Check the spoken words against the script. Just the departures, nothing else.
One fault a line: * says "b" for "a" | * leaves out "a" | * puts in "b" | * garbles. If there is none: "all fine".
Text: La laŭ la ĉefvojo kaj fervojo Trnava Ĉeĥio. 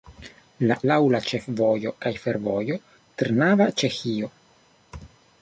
all fine